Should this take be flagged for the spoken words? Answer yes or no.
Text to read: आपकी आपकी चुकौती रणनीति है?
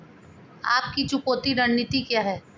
yes